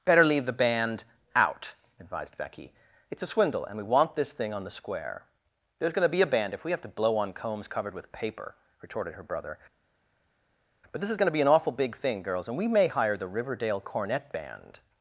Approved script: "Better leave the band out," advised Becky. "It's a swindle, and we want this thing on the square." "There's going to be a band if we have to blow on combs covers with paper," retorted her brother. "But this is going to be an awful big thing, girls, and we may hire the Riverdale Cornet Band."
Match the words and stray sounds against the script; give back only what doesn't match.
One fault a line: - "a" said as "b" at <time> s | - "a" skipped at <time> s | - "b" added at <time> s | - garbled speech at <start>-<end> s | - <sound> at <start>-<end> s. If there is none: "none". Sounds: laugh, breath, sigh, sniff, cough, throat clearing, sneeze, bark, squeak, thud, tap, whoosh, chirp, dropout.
- "covers" said as "covered" at 7.7 s